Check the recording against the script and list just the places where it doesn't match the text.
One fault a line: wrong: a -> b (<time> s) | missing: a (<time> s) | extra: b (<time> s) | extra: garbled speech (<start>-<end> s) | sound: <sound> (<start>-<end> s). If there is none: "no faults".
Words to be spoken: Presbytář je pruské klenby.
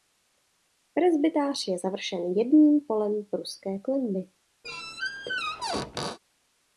extra: završen jedním polem (1.8 s)
sound: squeak (4.6-6.2 s)